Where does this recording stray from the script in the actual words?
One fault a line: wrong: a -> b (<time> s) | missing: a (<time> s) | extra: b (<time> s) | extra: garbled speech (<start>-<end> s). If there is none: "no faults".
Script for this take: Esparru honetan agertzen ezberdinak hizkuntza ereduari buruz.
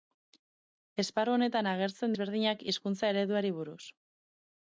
no faults